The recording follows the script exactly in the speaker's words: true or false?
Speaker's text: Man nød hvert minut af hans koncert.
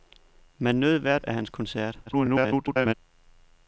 false